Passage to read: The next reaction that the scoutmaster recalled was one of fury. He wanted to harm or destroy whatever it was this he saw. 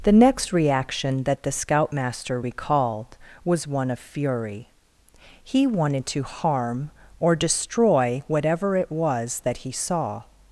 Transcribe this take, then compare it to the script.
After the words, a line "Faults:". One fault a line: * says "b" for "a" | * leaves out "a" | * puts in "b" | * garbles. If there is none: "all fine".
The next reaction that the scoutmaster recalled was one of fury. He wanted to harm or destroy whatever it was that he saw.
Faults:
* says "that" for "this"